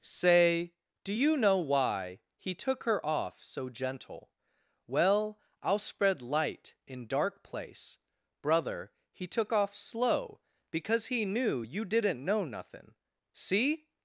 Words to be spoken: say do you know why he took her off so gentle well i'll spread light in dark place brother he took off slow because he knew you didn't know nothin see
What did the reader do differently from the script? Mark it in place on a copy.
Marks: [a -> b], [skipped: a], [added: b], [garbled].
say do you know why he took her off so gentle well i'll spread light in dark place brother he took off slow because he knew you didn't know nothin see